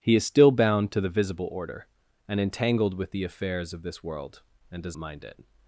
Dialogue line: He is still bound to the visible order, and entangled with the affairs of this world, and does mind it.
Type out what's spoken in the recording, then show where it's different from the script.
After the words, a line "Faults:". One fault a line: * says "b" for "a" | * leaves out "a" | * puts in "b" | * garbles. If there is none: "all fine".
He is still bound to the visible order, and entangled with the affairs of this world, and does mind it.
Faults:
all fine